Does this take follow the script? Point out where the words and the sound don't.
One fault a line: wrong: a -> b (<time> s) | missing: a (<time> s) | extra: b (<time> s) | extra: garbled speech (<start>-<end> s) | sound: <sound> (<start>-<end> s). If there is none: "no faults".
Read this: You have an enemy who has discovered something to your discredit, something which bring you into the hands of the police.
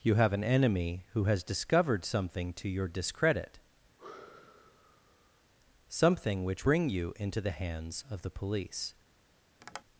sound: sigh (4.0-5.5 s)
sound: tap (9.6-9.8 s)